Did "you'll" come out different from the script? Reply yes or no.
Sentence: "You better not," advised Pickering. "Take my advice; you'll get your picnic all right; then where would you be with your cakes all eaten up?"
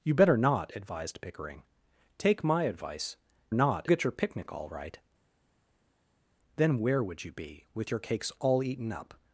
yes